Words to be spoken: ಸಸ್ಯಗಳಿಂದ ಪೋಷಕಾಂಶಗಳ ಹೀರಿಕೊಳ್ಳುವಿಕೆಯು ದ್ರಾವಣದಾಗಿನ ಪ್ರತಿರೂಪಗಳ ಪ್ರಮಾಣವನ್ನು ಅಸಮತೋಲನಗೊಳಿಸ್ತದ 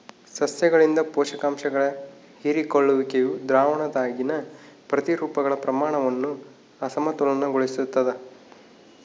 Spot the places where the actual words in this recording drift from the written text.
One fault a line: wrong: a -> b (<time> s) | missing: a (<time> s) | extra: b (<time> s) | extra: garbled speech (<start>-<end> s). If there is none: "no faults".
no faults